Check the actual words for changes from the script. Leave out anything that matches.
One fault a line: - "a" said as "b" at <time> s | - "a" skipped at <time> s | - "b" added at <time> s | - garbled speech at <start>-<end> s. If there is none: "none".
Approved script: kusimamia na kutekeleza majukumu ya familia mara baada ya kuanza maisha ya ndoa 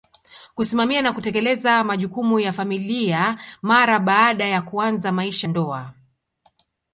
- "ya" skipped at 5.5 s